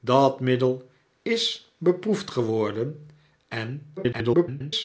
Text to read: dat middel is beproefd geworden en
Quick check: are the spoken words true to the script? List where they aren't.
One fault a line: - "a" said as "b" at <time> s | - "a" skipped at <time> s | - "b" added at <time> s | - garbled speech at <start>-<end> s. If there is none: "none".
- garbled speech at 4.0-4.8 s